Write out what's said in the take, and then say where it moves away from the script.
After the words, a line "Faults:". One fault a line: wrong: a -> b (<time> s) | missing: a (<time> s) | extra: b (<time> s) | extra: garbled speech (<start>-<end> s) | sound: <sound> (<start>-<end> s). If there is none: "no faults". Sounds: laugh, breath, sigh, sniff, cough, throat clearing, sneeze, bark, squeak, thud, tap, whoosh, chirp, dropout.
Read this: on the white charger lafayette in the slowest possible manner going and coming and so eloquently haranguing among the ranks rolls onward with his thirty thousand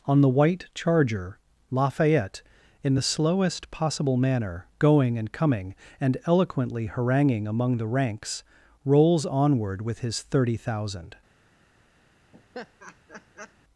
on the white charger lafayette in the slowest possible manner going and coming and eloquently haranguing among the ranks rolls onward with his thirty thousand
Faults:
missing: so (6.2 s)
sound: laugh (12.3-13.5 s)